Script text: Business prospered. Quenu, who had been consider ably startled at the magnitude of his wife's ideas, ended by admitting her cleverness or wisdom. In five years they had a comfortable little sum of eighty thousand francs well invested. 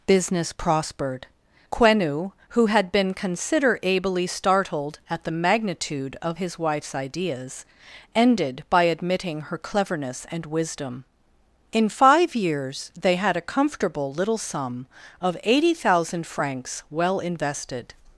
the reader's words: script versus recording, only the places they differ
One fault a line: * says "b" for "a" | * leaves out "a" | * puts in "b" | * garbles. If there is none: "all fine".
* says "and" for "or"